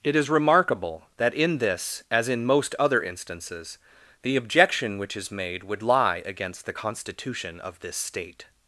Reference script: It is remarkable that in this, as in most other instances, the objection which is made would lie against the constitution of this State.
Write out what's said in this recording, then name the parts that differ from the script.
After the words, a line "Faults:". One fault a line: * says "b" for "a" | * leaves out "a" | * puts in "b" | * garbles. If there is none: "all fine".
It is remarkable that in this, as in most other instances, the objection which is made would lie against the constitution of this State.
Faults:
all fine